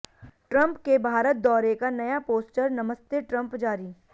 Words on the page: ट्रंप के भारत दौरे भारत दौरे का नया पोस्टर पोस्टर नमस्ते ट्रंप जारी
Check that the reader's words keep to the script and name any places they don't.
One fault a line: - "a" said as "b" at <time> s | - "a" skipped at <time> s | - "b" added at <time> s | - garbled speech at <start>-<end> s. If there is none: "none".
- "भारत दौरे" skipped at 1.7 s
- "पोस्टर" skipped at 2.7 s